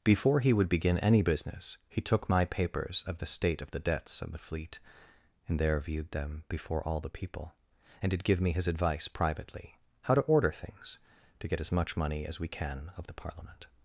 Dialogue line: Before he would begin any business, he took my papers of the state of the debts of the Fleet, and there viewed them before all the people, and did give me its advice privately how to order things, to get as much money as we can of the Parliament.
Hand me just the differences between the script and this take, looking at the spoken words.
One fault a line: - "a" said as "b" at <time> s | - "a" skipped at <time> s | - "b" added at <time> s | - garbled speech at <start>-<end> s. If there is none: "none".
- "its" said as "his" at 8.5 s